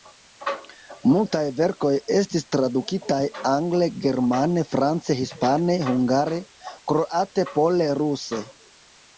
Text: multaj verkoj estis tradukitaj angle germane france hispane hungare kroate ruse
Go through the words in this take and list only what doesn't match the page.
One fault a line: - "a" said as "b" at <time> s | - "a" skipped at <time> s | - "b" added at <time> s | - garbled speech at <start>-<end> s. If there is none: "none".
- "pole" added at 7.5 s